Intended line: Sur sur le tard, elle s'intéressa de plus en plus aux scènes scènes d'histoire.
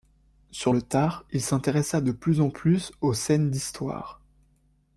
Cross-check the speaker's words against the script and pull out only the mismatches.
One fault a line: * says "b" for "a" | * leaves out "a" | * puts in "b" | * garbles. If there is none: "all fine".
* leaves out "sur"
* says "il" for "elle"
* leaves out "scènes"